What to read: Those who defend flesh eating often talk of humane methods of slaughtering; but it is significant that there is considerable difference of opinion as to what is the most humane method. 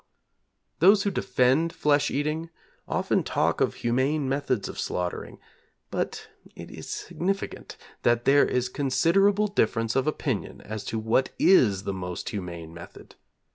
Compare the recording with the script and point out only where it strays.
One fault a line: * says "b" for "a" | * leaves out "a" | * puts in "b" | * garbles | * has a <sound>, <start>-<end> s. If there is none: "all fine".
all fine